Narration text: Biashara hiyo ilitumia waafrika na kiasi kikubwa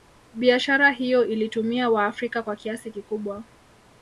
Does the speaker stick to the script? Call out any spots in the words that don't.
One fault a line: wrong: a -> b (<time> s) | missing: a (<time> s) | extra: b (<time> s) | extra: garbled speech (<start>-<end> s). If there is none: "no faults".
wrong: na -> kwa (2.4 s)